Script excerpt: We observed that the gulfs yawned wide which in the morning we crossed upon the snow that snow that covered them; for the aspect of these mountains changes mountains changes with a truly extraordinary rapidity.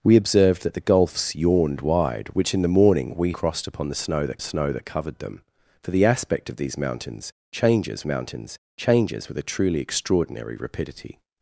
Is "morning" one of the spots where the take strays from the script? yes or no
no